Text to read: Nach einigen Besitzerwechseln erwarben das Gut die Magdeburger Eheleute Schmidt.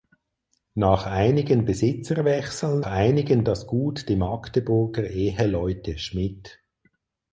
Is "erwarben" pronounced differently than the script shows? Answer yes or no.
yes